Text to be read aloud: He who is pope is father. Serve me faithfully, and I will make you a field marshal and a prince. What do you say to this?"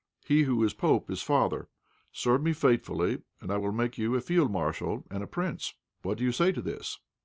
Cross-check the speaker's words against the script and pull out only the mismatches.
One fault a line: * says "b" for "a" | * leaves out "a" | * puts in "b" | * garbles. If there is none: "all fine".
all fine